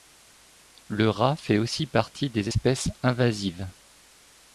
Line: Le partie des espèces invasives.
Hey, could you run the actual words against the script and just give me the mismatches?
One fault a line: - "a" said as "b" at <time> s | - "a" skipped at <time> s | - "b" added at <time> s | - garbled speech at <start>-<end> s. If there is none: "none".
- "rat fait aussi" added at 1.1 s